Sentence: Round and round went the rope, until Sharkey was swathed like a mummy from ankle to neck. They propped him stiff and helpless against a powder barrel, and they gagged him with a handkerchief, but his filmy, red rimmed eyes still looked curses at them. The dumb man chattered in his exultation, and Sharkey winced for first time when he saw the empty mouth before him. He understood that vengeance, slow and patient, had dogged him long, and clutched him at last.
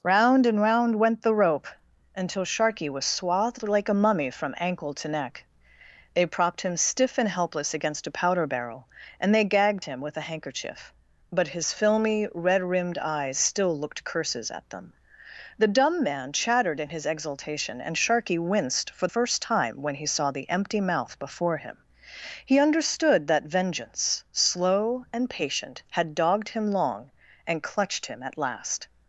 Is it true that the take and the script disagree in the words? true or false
false